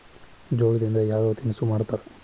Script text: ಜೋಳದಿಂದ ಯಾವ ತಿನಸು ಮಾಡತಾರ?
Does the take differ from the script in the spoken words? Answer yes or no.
no